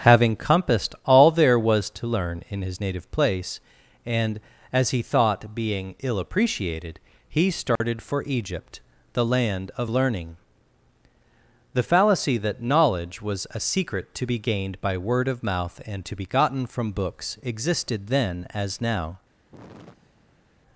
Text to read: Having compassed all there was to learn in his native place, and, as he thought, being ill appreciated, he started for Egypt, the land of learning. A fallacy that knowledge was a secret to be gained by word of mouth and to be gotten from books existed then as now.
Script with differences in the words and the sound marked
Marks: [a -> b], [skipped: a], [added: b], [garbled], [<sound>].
Having compassed all there was to learn in his native place, and, as he thought, being ill appreciated, he started [dropout] for Egypt, the land of learning. [A -> The] fallacy that knowledge was a secret to be gained by word of mouth and to be gotten from books existed then as now. [sigh]